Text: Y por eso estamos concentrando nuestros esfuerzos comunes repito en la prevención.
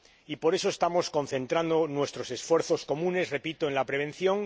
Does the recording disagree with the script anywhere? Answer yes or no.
no